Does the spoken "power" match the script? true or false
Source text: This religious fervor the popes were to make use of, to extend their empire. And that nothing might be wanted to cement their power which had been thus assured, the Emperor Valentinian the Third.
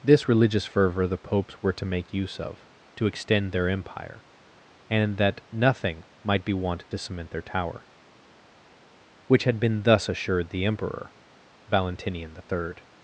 false